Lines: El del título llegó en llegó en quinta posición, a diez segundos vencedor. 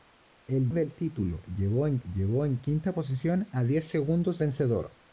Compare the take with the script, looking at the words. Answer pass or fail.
pass